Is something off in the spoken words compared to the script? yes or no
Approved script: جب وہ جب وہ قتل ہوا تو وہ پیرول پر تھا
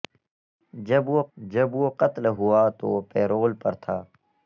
no